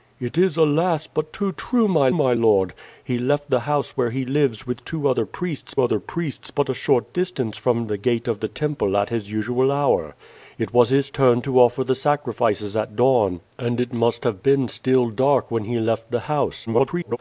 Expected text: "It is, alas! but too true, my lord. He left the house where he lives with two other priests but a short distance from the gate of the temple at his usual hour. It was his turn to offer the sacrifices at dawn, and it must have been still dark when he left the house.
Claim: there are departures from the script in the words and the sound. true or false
true